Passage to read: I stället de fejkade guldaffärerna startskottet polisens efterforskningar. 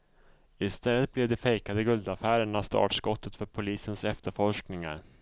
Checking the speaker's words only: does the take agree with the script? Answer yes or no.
no